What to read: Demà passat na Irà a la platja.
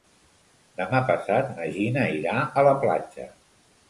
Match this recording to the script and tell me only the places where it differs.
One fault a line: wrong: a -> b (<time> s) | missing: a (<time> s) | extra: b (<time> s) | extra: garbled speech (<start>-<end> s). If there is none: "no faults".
extra: Gina (1.8 s)